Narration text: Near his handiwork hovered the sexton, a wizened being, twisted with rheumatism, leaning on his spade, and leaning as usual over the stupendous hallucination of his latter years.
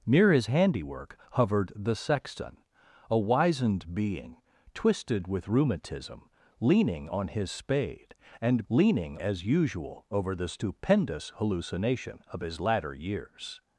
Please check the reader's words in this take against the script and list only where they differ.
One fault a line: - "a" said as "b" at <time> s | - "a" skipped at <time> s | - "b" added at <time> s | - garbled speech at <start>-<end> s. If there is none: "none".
none